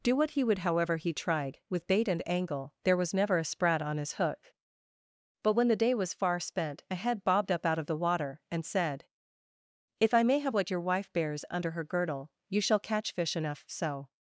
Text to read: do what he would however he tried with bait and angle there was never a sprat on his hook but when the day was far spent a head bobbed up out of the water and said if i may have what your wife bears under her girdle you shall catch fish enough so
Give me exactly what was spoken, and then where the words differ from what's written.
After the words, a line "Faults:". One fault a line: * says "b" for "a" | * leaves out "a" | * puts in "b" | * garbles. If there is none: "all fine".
do what he would however he tried with bait and angle there was never a sprat on his hook but when the day was far spent a head bobbed up out of the water and said if i may have what your wife bears under her girdle you shall catch fish enough so
Faults:
all fine